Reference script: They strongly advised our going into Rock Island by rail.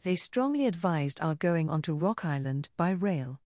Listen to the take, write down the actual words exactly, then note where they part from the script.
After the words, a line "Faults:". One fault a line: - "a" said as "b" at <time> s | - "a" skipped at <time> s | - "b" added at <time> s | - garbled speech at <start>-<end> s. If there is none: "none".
They strongly advised our going onto Rock Island by rail.
Faults:
- "into" said as "onto" at 1.7 s